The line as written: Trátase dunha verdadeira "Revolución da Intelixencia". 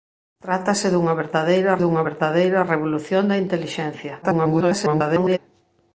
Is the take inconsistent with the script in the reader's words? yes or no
yes